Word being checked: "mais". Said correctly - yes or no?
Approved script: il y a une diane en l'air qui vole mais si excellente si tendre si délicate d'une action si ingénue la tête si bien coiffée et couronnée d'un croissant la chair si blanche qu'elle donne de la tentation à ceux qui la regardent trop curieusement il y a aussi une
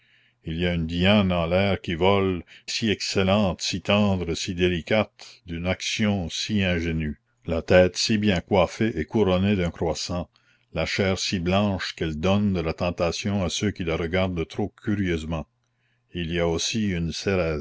no